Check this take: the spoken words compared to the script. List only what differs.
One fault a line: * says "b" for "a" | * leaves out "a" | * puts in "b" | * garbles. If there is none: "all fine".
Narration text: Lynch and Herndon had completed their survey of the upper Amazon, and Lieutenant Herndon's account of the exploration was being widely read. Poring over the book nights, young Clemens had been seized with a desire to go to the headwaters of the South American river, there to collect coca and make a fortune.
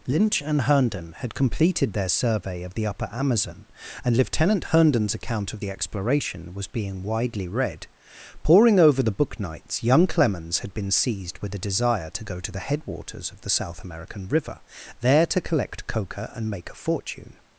all fine